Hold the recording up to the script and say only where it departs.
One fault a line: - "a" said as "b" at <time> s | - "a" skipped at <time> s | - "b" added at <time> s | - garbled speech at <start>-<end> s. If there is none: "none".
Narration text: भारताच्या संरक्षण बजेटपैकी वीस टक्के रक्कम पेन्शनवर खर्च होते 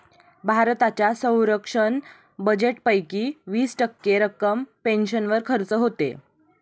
none